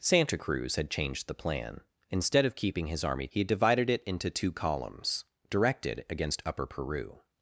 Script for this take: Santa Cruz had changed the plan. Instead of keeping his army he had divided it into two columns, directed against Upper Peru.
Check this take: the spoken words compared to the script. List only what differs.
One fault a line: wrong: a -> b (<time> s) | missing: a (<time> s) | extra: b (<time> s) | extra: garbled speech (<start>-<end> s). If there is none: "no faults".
no faults